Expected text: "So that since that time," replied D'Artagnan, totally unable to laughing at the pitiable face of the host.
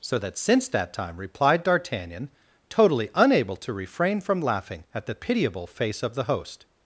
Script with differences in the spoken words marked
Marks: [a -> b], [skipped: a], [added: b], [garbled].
"So that since that time," replied D'Artagnan, totally unable to [added: refrain from] laughing at the pitiable face of the host.